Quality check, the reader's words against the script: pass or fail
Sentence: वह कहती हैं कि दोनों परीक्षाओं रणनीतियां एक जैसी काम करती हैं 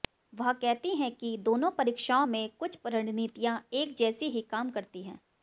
fail